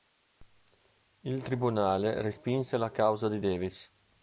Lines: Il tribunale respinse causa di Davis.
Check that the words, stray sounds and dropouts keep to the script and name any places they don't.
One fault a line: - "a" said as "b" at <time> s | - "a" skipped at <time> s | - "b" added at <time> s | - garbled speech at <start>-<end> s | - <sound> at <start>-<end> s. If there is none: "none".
- "la" added at 2.8 s